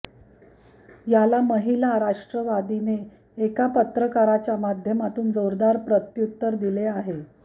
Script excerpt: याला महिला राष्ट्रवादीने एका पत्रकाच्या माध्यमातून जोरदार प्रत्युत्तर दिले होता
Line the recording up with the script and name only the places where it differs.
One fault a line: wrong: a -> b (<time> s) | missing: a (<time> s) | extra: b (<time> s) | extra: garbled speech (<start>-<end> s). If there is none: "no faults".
wrong: होता -> आहे (6.9 s)